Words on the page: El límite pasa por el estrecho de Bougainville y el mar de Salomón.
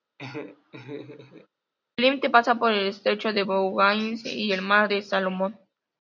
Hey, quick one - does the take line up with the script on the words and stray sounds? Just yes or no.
no